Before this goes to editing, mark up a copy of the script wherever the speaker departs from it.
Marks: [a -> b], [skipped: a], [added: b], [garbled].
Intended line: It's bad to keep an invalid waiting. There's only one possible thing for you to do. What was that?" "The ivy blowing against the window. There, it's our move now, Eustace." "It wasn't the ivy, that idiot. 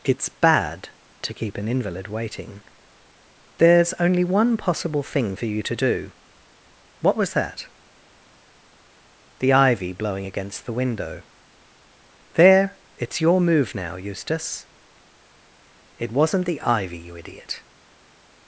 It's bad to keep an invalid waiting. There's only one possible thing for you to do. What was that?" "The ivy blowing against the window. There, it's [our -> your] move now, Eustace." "It wasn't the ivy, [that -> you] idiot.